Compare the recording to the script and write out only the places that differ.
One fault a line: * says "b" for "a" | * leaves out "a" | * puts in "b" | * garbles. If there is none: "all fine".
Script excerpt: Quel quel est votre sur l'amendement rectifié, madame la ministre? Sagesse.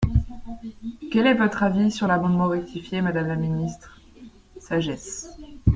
* leaves out "quel"
* puts in "avis"